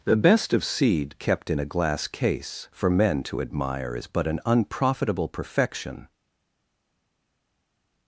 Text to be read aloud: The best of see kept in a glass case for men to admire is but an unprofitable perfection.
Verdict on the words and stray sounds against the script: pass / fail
fail